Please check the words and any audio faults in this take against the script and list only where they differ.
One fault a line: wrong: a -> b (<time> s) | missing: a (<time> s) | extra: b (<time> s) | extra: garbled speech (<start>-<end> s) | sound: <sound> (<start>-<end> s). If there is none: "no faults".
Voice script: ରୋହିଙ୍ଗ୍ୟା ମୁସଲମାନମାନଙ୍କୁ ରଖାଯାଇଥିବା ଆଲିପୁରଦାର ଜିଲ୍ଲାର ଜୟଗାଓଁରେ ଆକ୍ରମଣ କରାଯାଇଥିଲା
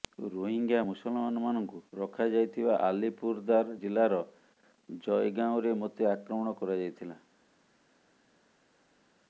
extra: ମୋତେ (5.8 s)